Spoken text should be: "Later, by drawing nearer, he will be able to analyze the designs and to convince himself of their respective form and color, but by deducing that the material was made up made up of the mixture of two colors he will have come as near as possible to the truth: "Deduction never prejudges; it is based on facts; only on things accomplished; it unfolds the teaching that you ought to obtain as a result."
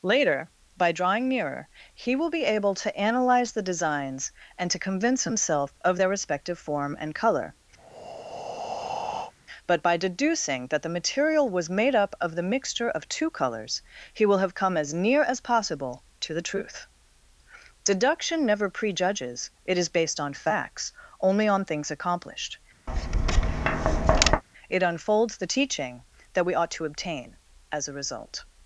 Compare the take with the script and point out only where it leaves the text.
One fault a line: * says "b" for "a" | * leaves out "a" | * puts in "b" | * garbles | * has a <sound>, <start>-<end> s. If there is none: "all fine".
* has a breath, 7.8-9.3 s
* leaves out "made up"
* has a tap, 22.9-24.4 s
* says "we" for "you"